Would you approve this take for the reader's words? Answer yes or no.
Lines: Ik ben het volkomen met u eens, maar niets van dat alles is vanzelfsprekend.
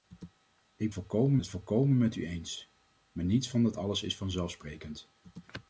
no